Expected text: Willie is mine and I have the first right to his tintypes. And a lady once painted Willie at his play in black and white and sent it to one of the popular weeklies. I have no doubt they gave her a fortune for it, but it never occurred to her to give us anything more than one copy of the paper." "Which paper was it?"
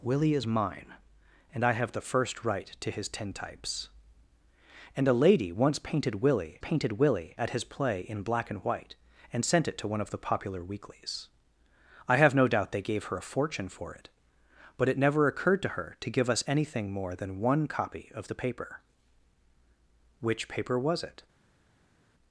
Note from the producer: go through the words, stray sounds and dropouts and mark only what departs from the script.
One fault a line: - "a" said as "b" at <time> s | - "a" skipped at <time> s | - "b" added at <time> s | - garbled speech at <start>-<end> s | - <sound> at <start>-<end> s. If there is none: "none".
- "painted Willie" added at 6.6 s